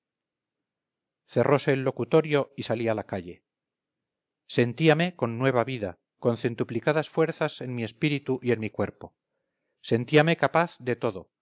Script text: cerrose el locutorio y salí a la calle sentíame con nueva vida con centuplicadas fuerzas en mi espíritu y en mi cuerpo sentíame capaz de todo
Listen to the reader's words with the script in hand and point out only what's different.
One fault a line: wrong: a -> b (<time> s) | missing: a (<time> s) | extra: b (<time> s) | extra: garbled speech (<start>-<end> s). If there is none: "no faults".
no faults